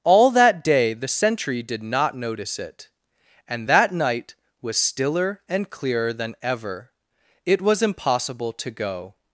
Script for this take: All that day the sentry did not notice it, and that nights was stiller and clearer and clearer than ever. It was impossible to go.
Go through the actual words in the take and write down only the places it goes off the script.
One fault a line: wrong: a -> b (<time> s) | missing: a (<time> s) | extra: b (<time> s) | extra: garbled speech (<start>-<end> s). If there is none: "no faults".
wrong: nights -> night (3.9 s)
missing: and clearer (6.1 s)